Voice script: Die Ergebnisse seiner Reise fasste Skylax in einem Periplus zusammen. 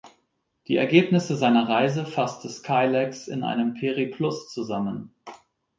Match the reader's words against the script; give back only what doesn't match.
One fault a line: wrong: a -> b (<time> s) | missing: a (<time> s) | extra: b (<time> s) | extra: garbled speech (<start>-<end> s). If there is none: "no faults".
no faults